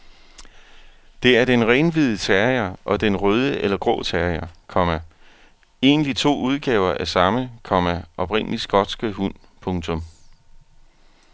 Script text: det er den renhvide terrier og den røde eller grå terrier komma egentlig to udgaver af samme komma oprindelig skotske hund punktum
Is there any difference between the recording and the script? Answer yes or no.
no